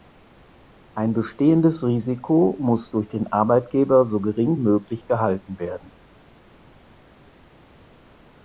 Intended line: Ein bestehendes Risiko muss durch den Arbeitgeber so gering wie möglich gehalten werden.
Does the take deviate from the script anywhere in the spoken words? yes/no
yes